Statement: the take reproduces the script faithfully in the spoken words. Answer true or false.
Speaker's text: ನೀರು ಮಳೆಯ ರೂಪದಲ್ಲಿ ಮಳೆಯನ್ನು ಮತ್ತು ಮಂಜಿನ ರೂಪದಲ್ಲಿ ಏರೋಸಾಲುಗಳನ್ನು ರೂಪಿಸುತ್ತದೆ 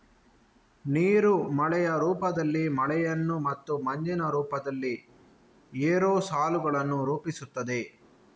true